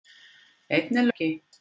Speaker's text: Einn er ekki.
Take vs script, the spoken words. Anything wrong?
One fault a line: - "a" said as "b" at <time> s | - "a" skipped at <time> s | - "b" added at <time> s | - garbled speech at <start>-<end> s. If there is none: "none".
none